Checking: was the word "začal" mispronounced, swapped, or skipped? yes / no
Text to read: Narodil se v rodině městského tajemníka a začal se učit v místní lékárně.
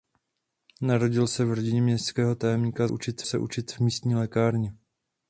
yes